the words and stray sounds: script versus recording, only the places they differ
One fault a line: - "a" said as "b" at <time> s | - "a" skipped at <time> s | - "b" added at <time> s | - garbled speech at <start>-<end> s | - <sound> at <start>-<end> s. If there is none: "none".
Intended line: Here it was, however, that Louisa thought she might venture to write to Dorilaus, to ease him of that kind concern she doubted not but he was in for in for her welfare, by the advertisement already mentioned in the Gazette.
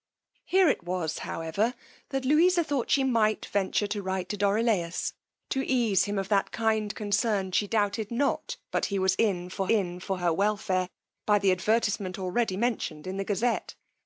none